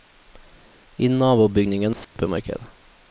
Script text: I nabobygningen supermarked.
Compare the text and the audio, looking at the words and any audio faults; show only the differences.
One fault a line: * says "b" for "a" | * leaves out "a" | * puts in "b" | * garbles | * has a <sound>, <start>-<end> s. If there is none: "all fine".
* has a dropout, 2.0-2.2 s